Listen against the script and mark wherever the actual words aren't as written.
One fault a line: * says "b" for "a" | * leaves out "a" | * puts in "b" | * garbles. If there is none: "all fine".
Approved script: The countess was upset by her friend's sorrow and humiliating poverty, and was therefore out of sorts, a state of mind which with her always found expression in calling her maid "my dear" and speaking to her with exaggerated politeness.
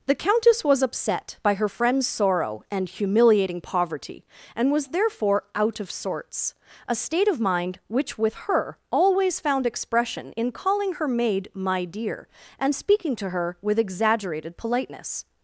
all fine